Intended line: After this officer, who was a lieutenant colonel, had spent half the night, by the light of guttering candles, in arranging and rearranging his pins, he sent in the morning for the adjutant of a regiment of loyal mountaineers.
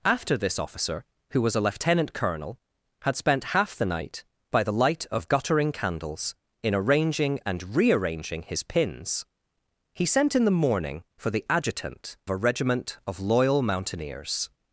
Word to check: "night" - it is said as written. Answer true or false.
true